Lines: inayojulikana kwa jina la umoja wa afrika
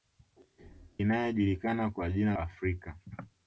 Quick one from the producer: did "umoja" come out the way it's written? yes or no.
no